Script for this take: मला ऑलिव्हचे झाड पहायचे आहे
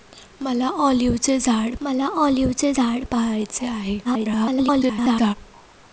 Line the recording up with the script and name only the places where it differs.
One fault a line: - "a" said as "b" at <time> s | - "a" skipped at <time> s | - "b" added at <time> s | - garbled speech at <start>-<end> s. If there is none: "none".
- "मला ऑलिव्हचे झाड" added at 1.8 s
- garbled speech at 4.0-5.3 s